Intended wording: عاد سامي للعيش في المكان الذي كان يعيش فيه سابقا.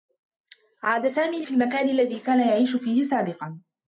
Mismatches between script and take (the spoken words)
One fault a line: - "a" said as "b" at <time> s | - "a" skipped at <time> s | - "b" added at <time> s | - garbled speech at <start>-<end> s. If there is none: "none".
- "للعيش" skipped at 1.5 s